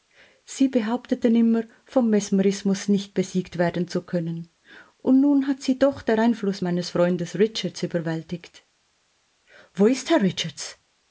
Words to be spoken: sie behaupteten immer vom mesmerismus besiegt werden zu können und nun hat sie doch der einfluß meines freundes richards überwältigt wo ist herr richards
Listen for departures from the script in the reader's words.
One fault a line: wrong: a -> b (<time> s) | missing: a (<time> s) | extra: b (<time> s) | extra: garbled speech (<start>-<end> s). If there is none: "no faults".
extra: nicht (2.9 s)